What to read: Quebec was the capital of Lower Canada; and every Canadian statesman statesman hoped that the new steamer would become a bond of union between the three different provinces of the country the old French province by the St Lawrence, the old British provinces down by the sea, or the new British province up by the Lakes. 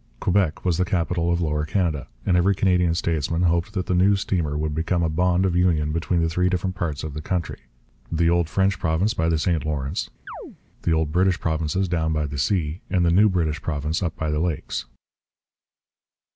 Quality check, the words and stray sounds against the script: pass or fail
fail